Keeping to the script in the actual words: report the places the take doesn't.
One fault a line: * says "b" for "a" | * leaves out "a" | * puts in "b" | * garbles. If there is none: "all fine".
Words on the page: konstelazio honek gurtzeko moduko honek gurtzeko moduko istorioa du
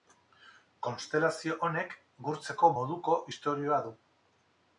* leaves out "honek gurtzeko moduko"